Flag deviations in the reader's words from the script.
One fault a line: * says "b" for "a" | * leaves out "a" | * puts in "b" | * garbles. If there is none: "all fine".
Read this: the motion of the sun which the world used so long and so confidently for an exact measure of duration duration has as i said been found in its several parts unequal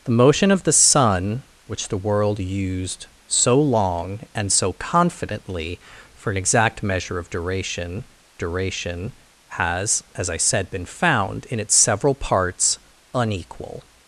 all fine